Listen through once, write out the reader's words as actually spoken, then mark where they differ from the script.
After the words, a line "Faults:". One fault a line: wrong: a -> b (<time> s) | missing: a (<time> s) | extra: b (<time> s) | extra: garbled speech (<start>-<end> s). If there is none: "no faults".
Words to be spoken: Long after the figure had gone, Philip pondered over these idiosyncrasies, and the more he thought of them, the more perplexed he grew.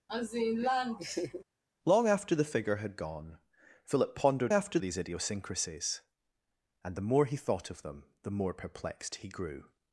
Long after the figure had gone, Philip pondered after these idiosyncrasies, and the more he thought of them, the more perplexed he grew.
Faults:
wrong: over -> after (4.5 s)